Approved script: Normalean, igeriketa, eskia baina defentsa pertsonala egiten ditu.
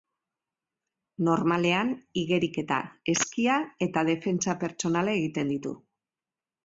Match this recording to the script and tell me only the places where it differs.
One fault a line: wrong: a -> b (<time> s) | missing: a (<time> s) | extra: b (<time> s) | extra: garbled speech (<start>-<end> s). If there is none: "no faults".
wrong: baina -> eta (3.9 s)